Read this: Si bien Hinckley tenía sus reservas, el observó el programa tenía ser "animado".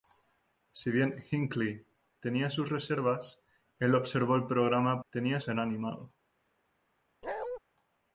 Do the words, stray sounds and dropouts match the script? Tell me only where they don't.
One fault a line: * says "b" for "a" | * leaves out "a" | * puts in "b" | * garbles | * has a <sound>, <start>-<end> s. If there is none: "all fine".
* has a bark, 7.2-7.6 s